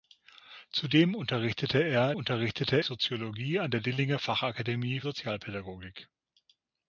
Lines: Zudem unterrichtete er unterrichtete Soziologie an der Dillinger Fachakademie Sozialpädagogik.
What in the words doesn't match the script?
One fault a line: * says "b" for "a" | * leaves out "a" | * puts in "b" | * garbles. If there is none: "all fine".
all fine